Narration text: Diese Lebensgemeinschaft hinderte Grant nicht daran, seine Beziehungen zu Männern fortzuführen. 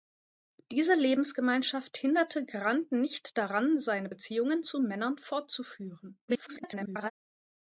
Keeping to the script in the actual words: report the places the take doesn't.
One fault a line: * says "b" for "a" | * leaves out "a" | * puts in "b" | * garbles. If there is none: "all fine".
* garbles